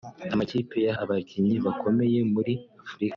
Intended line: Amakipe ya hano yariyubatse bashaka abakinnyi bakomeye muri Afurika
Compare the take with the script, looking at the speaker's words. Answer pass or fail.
fail